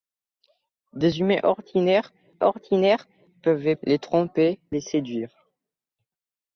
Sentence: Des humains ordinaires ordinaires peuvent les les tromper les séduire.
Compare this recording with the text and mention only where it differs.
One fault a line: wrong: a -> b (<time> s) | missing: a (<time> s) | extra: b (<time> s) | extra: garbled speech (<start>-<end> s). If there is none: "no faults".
no faults